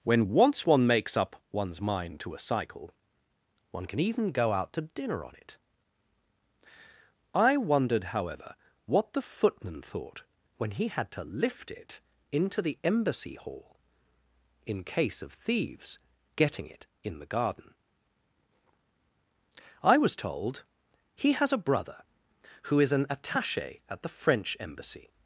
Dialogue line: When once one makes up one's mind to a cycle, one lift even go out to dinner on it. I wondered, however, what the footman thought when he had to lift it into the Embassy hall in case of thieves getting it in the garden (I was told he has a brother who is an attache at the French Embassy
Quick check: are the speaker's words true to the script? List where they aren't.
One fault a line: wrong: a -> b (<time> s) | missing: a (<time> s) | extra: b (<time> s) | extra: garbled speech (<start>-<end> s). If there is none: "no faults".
wrong: lift -> can (3.9 s)